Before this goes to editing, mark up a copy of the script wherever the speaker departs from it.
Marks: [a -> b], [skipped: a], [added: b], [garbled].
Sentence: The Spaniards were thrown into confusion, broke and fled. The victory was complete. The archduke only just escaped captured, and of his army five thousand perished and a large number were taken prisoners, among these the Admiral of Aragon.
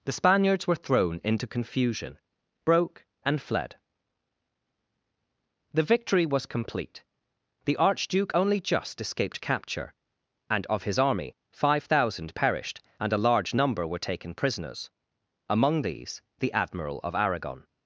The Spaniards were thrown into confusion, broke and fled. The victory was complete. The archduke only just escaped [captured, -> capture] and of his army five thousand perished and a large number were taken prisoners, among these the Admiral of Aragon.